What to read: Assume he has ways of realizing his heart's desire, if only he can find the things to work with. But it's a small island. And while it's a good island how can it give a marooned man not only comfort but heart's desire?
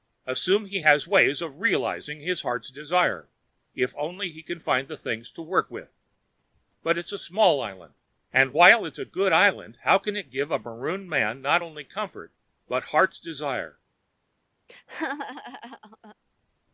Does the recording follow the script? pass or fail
pass